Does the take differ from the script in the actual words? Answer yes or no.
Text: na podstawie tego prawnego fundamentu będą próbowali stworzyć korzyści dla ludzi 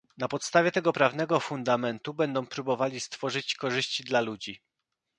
no